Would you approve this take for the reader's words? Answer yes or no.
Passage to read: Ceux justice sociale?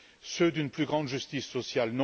no